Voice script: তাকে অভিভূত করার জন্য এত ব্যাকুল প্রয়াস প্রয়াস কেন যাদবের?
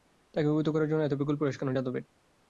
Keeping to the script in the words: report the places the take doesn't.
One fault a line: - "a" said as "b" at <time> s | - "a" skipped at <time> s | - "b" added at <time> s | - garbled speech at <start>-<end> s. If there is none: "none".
- "প্রয়াস" skipped at 1.6 s